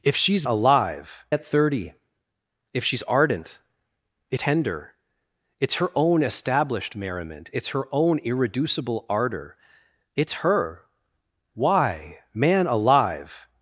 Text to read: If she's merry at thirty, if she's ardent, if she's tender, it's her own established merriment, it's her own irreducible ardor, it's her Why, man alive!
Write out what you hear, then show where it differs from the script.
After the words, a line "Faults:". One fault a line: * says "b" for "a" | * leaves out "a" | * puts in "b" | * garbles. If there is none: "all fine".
If she's alive at thirty, if she's ardent, if tender, it's her own established merriment, it's her own irreducible ardor, it's her Why, man alive!
Faults:
* says "alive" for "merry"
* leaves out "she's"